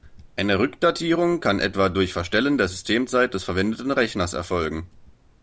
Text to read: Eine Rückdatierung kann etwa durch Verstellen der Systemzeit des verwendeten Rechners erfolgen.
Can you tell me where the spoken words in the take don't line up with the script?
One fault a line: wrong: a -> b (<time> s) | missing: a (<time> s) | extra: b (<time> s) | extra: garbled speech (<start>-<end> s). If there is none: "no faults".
no faults